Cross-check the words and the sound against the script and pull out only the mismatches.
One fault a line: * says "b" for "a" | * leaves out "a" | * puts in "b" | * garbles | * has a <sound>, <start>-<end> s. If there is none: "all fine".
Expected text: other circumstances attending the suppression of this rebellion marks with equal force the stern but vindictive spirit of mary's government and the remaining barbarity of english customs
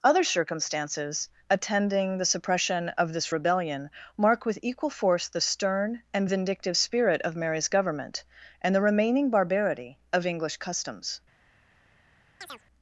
* says "mark" for "marks"
* says "and" for "but"
* has a chirp, 12.4-12.6 s